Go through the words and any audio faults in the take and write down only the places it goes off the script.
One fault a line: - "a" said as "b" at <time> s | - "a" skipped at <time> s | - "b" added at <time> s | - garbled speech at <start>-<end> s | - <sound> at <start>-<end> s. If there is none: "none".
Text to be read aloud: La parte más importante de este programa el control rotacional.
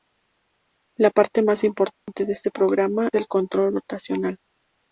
- dropout at 1.9-2.1 s